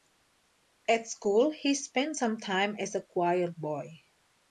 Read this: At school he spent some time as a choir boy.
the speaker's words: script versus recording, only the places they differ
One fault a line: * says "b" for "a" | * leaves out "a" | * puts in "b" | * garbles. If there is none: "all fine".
all fine